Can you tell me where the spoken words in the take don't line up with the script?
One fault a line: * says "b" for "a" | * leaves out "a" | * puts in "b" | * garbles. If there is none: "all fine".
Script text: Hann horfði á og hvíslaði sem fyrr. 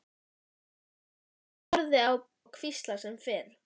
all fine